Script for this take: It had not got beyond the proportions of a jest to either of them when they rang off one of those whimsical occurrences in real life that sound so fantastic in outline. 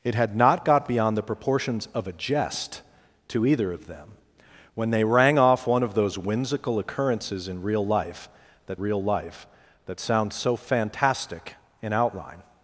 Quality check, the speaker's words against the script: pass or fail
fail